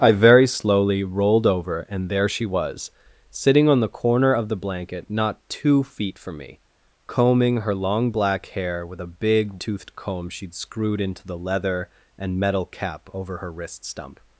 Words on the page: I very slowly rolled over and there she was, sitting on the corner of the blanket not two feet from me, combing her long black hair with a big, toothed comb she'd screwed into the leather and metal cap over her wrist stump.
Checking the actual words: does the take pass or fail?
pass